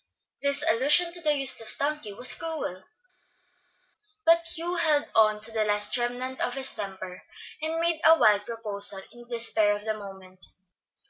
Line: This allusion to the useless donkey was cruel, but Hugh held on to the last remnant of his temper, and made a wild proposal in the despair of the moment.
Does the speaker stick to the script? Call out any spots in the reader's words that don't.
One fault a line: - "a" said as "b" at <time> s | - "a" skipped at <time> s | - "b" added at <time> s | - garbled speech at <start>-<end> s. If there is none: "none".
none